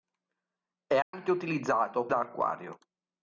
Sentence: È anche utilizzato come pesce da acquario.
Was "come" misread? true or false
true